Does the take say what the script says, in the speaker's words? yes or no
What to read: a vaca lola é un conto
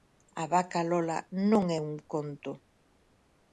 no